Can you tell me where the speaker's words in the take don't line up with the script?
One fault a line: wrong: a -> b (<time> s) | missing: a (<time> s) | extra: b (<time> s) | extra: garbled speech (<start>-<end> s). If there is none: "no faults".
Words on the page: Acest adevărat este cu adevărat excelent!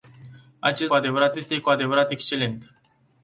no faults